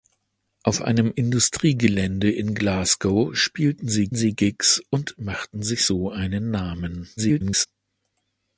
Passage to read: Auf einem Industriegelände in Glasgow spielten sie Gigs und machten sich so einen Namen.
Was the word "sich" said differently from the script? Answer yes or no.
no